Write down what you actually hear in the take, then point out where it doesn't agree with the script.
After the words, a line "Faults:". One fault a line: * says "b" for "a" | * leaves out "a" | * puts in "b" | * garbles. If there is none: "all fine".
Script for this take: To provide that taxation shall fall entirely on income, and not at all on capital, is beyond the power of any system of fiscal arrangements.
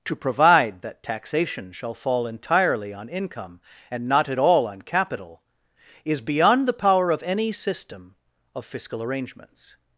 To provide that taxation shall fall entirely on income, and not at all on capital, is beyond the power of any system of fiscal arrangements.
Faults:
all fine